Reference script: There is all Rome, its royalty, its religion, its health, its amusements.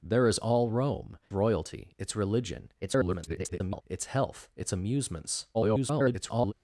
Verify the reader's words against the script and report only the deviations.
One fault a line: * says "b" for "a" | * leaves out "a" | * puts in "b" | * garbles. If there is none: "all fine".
* leaves out "its"
* garbles
* garbles